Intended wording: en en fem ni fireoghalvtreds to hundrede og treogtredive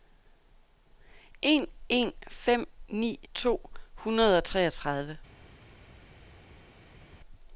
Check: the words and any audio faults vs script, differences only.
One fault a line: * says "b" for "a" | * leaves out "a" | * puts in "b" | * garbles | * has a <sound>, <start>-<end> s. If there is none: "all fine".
* leaves out "fireoghalvtreds"